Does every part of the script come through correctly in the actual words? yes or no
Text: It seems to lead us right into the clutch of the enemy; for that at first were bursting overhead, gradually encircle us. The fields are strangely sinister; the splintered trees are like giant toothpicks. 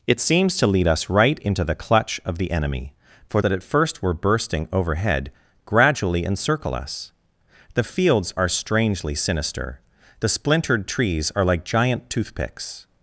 yes